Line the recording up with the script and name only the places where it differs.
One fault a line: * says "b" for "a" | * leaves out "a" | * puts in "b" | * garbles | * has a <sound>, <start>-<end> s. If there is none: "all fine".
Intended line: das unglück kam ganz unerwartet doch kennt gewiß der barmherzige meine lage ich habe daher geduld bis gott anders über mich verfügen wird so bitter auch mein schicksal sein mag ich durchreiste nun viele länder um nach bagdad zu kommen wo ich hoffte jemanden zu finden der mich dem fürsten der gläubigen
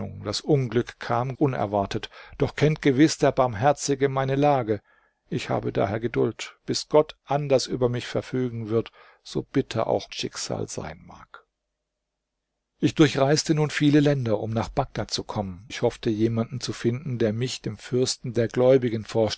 * leaves out "ganz"
* leaves out "mein"
* leaves out "wo"